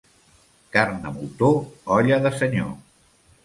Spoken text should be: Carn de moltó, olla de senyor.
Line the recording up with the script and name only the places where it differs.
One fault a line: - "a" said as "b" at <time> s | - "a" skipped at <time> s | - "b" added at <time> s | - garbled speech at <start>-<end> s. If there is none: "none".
none